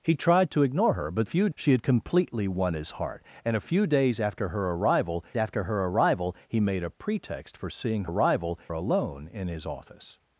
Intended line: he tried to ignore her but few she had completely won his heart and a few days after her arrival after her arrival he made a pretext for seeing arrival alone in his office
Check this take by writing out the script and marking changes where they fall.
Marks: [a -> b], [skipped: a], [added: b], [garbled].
he tried to ignore her but few she had completely won his heart and a few days after her arrival after her arrival he made a pretext for seeing arrival alone in his office